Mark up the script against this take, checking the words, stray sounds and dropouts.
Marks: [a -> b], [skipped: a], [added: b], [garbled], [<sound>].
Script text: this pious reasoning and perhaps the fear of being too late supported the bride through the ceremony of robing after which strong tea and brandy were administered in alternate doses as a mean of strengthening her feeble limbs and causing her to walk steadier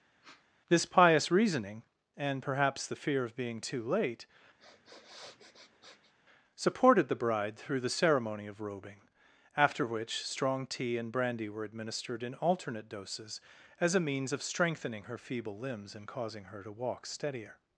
[sniff] this pious reasoning and perhaps the fear of being too late [sniff] supported the bride through the ceremony of robing after which strong tea and brandy were administered in alternate doses as a [mean -> means] of strengthening her feeble limbs and causing her to walk steadier